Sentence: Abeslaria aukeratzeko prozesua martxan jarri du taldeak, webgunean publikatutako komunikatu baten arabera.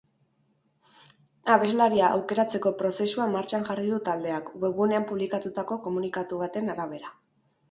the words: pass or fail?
pass